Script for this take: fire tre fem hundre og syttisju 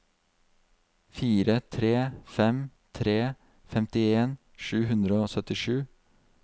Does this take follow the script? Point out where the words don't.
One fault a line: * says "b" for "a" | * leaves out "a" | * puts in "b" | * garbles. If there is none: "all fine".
* puts in "tre femtien sju"